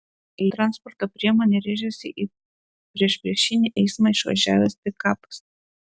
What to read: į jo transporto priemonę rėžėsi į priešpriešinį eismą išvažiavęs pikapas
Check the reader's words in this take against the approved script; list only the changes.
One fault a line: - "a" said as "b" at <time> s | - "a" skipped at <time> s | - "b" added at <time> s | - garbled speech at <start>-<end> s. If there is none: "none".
- "jo" skipped at 0.5 s